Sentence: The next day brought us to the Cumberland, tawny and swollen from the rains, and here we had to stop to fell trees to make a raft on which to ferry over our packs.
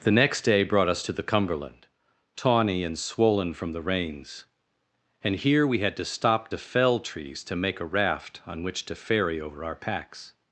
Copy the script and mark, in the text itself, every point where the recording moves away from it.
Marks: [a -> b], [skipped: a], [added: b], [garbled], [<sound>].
The next day brought us to the Cumberland, tawny and swollen from the rains, and here we had to stop to fell trees to make a raft on which to ferry over our packs.